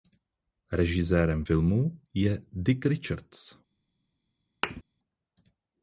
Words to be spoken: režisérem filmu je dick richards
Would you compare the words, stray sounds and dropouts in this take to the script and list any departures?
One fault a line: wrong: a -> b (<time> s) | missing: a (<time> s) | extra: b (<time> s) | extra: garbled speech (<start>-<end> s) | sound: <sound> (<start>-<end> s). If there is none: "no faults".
sound: thud (4.6-4.8 s)